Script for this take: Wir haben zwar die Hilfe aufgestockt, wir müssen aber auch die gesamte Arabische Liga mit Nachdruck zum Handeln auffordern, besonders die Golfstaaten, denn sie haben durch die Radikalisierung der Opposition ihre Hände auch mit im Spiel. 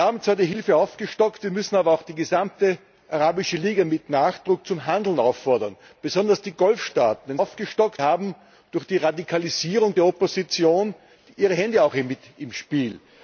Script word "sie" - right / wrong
wrong